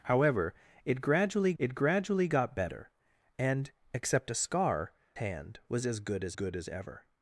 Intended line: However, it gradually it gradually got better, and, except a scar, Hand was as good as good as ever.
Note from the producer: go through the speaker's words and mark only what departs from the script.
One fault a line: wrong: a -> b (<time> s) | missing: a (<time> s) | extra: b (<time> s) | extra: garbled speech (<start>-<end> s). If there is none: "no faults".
no faults